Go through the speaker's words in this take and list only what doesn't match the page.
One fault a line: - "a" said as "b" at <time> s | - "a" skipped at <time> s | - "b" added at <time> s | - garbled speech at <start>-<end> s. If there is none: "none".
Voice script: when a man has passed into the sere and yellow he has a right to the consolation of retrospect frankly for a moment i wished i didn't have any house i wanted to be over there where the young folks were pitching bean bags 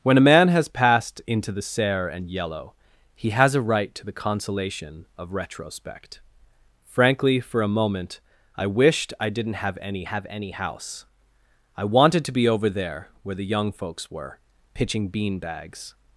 - "have any" added at 10.0 s